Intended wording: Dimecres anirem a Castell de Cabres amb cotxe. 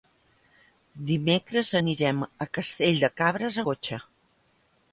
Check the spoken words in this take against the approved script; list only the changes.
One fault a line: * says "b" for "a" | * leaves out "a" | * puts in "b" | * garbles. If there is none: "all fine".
* leaves out "amb"